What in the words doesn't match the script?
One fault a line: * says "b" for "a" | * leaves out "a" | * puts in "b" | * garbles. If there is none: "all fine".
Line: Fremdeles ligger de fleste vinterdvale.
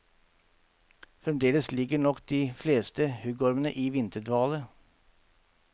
* puts in "nok"
* puts in "huggormene i"